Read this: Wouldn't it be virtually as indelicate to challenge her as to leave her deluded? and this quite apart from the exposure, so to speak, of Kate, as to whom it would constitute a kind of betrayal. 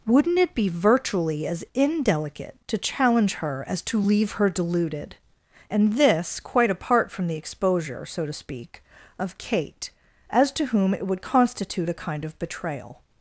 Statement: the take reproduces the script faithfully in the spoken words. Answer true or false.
true